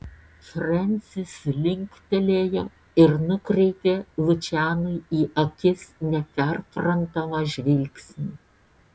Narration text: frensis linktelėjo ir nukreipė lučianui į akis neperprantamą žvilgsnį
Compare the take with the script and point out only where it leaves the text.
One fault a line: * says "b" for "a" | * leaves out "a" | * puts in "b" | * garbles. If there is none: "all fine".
all fine